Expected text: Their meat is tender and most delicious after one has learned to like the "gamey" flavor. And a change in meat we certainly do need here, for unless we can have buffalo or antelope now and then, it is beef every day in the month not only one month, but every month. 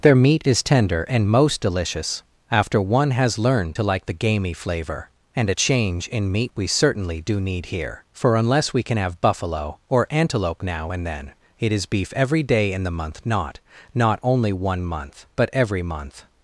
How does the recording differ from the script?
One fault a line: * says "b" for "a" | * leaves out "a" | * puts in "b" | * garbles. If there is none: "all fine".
* puts in "not"